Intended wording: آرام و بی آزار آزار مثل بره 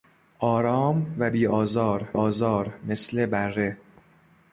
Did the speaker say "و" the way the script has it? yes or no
yes